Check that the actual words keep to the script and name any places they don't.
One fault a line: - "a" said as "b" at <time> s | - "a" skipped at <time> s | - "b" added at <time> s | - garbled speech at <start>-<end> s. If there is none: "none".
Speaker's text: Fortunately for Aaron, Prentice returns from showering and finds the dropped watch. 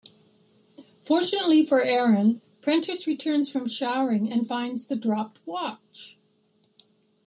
none